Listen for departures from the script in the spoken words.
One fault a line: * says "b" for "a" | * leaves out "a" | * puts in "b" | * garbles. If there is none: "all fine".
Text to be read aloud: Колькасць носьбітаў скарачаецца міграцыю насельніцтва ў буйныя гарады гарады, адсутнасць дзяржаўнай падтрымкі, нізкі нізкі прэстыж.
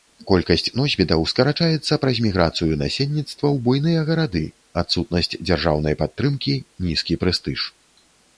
* puts in "праз"
* leaves out "гарады"
* leaves out "нізкі"